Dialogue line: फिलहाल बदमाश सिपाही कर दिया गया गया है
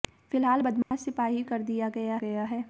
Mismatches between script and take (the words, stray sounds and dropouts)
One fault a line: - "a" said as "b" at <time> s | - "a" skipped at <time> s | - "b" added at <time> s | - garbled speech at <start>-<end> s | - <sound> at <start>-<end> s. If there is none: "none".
- dropout at 0.8-0.9 s